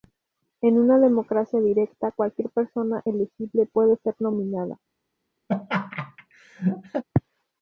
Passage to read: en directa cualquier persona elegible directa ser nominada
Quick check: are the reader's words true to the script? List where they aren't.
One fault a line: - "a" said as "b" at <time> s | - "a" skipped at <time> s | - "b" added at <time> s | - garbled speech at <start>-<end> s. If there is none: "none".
- "una democracia" added at 0.8 s
- "directa" said as "puede" at 3.7 s